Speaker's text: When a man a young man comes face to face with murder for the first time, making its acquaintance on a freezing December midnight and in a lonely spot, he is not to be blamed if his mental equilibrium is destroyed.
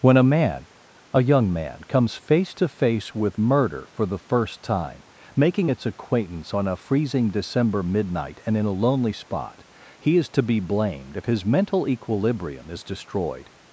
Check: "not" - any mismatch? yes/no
yes